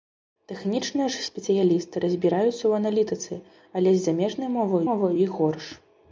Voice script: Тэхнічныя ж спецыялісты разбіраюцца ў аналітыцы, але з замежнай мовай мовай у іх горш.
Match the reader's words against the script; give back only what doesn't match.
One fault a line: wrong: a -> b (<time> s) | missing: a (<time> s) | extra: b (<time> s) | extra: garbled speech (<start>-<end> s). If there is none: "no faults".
no faults